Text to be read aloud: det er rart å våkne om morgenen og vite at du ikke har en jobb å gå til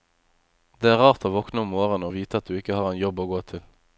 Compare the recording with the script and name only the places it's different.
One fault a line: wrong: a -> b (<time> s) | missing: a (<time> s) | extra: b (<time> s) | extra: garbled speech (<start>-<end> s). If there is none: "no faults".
no faults